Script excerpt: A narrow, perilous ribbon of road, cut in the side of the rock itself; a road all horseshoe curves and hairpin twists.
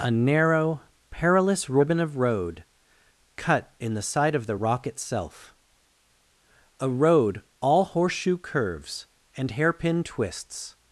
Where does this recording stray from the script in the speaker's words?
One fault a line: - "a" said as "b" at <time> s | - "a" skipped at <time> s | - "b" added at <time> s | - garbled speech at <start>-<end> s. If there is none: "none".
none